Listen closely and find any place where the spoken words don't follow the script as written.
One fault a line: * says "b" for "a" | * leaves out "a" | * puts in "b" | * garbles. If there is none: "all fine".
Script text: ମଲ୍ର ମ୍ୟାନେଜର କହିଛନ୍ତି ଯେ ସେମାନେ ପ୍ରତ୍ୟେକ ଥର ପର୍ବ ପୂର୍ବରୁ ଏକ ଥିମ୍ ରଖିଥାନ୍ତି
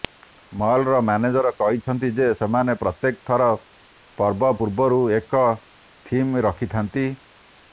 all fine